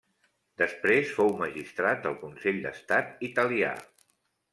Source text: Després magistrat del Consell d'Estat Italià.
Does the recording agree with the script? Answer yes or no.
no